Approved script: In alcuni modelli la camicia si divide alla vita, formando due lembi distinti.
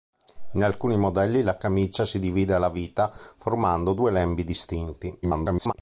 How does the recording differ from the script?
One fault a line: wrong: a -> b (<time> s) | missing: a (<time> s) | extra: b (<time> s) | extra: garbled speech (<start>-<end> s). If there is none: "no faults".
extra: garbled speech (5.2-5.7 s)